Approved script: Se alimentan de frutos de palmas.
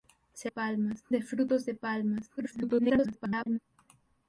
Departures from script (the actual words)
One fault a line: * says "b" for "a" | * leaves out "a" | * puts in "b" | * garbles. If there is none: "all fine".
* says "palmas" for "alimentan"
* garbles